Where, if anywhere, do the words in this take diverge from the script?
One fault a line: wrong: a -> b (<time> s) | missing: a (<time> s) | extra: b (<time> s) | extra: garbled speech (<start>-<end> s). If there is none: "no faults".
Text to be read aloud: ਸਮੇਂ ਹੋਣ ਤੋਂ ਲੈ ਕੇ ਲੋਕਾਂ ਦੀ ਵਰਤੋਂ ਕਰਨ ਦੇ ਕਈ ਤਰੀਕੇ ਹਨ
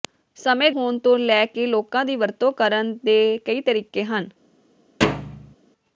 no faults